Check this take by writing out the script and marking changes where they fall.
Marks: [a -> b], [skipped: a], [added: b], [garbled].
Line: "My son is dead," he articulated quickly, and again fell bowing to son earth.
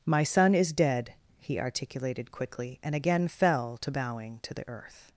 "My son is dead," he articulated quickly, and again fell [added: to] bowing to [son -> the] earth.